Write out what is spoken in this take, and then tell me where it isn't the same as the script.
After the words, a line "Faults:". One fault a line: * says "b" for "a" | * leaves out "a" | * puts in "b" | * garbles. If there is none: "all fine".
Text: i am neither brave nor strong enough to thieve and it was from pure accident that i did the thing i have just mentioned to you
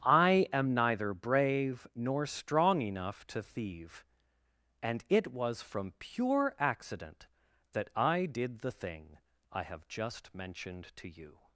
i am neither brave nor strong enough to thieve and it was from pure accident that i did the thing i have just mentioned to you
Faults:
all fine